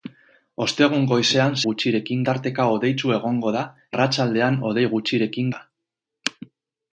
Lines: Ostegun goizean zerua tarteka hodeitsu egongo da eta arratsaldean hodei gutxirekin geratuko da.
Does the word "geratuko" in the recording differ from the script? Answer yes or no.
yes